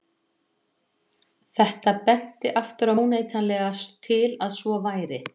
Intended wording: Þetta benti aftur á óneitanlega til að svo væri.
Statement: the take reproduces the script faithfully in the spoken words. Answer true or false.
true